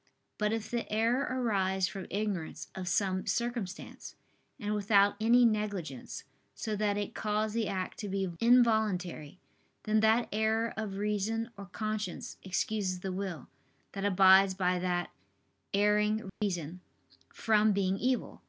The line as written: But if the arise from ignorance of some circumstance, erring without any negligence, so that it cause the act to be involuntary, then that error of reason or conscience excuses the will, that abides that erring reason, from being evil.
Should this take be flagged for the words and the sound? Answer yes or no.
yes